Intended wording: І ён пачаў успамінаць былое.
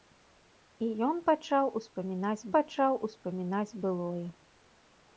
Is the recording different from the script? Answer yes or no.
yes